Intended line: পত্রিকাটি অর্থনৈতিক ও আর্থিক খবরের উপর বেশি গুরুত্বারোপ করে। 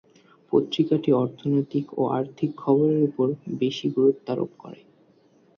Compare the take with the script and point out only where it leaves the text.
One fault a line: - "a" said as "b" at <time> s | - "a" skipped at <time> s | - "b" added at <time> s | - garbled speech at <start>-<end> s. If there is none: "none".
none